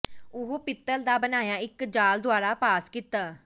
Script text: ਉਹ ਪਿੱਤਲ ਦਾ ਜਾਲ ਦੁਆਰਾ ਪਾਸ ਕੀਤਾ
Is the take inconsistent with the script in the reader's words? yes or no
yes